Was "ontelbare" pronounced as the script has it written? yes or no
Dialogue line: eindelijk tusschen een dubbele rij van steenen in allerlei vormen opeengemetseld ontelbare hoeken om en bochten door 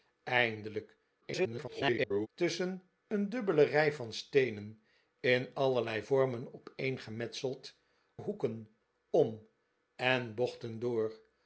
no